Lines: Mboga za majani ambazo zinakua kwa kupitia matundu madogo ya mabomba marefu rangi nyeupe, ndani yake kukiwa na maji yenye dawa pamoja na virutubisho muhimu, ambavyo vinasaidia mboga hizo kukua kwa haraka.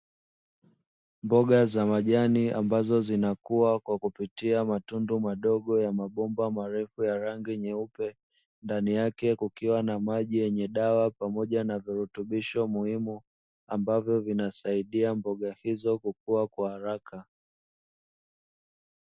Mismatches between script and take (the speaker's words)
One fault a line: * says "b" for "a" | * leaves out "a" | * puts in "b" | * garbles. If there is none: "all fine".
* puts in "ya"